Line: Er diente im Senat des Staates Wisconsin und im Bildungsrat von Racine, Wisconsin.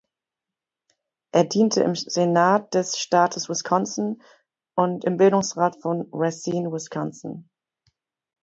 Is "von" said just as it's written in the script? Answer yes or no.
yes